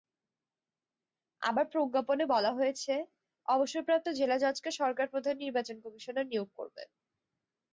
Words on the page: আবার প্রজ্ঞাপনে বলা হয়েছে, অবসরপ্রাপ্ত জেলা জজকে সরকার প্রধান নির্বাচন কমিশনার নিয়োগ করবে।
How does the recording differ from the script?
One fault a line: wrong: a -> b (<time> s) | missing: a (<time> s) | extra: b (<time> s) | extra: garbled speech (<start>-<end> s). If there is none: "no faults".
no faults